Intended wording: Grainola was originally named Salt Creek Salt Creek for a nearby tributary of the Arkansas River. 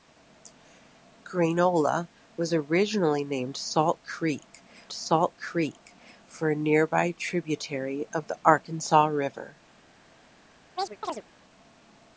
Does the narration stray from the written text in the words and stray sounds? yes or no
yes